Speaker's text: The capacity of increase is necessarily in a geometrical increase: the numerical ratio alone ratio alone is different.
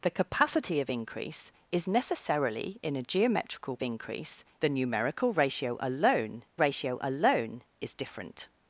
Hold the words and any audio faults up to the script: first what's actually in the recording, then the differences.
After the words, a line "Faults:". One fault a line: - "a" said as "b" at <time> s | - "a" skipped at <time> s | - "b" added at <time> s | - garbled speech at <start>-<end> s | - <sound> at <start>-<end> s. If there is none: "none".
The capacity of increase is necessarily in a geometrical increase: the numerical ratio alone ratio alone is different.
Faults:
none